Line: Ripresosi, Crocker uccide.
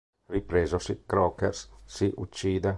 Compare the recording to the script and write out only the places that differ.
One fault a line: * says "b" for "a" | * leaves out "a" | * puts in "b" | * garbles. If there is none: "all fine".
* puts in "si"